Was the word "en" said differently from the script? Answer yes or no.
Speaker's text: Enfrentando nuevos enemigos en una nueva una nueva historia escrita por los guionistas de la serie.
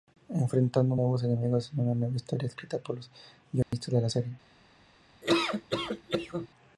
no